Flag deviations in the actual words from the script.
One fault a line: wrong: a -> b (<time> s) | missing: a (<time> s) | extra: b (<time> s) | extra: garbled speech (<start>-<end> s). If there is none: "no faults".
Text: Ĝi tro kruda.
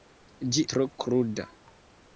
no faults